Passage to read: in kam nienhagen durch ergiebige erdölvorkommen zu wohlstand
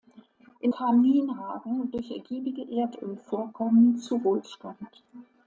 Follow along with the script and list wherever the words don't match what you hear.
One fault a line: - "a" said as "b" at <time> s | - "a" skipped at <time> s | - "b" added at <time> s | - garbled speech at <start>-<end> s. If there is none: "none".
none